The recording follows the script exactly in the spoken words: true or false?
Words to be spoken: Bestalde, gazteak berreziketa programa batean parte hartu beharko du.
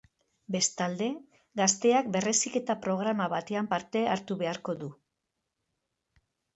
true